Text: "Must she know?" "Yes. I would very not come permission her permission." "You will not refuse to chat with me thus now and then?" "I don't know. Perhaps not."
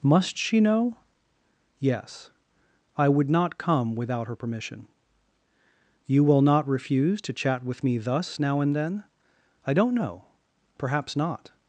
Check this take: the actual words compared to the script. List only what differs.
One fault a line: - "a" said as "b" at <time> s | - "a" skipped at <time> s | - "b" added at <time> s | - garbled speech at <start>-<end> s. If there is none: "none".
- "very" skipped at 3.3 s
- "permission" said as "without" at 4.0 s